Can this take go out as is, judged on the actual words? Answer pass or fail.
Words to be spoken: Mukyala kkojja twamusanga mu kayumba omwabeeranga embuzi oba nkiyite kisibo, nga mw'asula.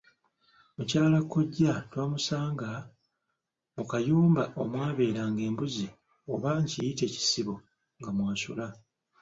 pass